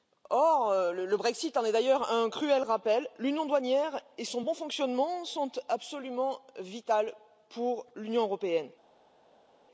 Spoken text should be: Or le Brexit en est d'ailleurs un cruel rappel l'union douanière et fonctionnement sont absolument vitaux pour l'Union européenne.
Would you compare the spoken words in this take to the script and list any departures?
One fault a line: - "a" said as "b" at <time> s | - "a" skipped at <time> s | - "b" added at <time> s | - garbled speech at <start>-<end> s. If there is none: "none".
- "son bon" added at 4.2 s